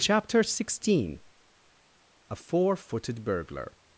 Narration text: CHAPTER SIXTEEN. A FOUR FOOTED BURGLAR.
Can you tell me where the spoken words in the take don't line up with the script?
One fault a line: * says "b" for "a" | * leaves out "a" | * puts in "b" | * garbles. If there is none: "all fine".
all fine